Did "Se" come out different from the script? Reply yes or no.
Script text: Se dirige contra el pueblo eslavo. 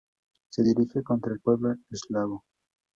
no